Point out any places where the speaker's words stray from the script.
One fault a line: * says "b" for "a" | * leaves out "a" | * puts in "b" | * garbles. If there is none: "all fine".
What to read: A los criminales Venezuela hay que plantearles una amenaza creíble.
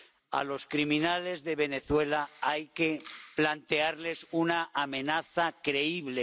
* puts in "de"